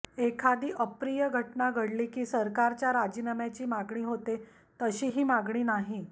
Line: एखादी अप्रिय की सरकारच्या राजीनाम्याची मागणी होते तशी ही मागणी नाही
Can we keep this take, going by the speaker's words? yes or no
no